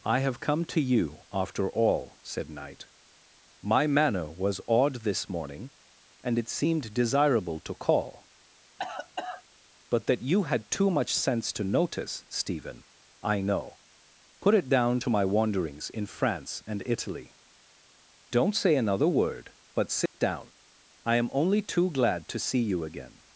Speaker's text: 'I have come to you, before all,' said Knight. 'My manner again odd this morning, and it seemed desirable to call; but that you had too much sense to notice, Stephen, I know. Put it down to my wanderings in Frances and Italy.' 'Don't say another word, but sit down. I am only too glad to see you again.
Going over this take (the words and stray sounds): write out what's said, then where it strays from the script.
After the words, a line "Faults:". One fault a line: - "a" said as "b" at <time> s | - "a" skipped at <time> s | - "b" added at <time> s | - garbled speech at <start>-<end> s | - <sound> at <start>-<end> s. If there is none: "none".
'I have come to you, after all,' said Knight. 'My manner was odd this morning, and it seemed desirable to call; but that you had too much sense to notice, Stephen, I know. Put it down to my wanderings in France and Italy.' 'Don't say another word, but sit down. I am only too glad to see you again.
Faults:
- "before" said as "after" at 1.3 s
- "again" said as "was" at 4.3 s
- cough at 8.8-9.4 s
- "Frances" said as "France" at 16.1 s
- dropout at 20.1-20.1 s